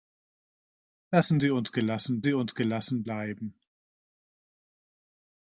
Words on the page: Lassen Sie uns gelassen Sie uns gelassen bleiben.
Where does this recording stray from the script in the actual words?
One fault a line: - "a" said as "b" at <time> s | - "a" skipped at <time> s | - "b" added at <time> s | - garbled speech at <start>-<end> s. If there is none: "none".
none